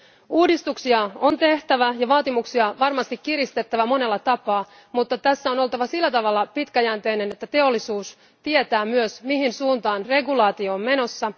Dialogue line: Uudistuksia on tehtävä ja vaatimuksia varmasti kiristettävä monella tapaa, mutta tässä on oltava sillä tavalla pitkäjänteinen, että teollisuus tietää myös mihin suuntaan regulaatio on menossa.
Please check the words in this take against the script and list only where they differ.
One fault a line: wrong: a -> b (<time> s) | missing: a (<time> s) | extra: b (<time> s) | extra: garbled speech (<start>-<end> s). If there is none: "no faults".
no faults